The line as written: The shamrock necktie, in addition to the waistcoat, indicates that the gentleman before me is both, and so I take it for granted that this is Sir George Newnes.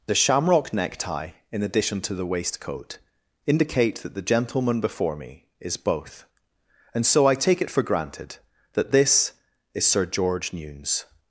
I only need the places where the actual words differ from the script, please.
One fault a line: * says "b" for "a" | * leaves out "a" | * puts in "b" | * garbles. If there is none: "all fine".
* says "indicate" for "indicates"